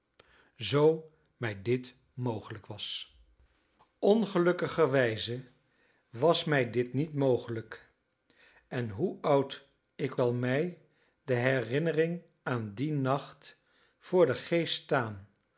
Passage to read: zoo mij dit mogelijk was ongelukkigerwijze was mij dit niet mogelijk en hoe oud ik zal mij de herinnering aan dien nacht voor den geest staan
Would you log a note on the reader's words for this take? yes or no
no